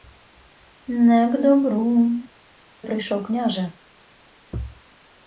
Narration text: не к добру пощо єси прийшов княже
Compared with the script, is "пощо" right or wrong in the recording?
wrong